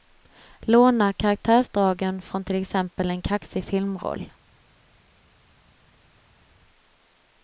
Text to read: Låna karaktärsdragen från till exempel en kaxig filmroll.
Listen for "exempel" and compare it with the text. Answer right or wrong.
right